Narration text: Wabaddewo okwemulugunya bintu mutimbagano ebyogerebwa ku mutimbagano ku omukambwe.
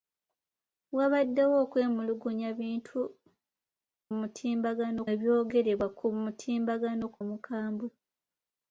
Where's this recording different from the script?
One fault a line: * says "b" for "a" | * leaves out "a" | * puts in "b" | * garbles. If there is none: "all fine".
all fine